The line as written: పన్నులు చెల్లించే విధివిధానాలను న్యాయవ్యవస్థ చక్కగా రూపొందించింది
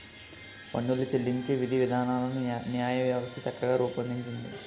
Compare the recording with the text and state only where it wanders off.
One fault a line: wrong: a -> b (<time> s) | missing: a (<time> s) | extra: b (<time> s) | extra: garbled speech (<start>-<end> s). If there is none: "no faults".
no faults